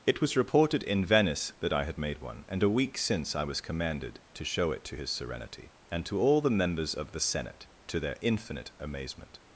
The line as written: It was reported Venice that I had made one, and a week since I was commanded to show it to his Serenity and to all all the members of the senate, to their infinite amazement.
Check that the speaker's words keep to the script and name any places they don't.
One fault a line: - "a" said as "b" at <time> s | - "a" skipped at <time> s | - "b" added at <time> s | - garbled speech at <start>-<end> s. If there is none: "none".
- "in" added at 0.8 s
- "all" skipped at 6.4 s